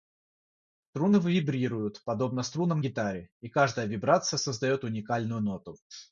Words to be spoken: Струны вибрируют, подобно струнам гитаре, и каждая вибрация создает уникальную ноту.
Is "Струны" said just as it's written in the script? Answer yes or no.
yes